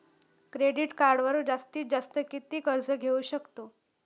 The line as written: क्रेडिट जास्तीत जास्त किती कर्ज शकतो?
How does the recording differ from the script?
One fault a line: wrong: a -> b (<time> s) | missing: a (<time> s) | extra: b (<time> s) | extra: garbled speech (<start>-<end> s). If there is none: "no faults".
extra: कार्डवर (0.9 s)
extra: घेऊ (2.9 s)